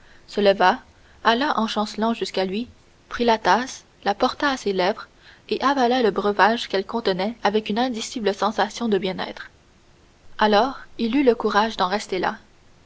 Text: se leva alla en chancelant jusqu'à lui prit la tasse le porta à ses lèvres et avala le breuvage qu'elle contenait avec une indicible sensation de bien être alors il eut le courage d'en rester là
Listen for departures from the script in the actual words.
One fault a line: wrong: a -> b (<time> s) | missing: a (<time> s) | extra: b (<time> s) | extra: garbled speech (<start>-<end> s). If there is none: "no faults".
wrong: le -> la (4.0 s)